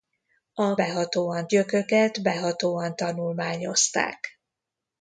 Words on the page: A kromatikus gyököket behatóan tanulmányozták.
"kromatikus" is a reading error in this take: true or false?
true